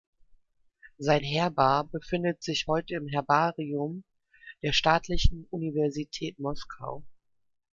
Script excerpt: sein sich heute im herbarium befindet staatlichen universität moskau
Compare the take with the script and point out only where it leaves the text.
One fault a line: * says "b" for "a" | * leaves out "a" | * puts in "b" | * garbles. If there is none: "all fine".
* puts in "herbar befindet"
* says "der" for "befindet"